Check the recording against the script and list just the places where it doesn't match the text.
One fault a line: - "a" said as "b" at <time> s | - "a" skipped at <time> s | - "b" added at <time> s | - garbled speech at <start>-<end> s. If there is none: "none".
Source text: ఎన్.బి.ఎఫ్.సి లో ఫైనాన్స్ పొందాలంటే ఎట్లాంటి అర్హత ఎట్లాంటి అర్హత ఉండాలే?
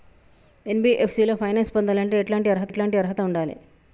none